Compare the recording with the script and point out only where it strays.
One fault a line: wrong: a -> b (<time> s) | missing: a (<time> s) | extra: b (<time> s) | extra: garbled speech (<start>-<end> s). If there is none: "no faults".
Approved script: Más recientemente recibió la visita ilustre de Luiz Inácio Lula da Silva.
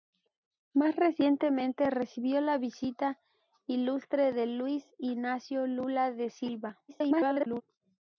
extra: garbled speech (6.9-7.6 s)